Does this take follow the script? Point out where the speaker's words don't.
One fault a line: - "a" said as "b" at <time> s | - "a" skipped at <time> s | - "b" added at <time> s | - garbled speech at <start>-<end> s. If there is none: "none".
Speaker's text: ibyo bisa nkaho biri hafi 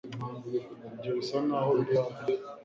none